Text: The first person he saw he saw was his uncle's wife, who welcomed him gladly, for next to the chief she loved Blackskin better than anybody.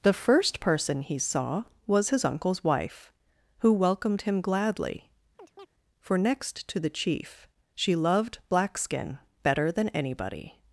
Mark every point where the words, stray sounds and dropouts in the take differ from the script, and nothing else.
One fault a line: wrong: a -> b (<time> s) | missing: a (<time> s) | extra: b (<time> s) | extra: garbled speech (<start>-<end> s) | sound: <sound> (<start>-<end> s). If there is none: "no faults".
missing: he saw (1.6 s)
sound: chirp (5.4-5.7 s)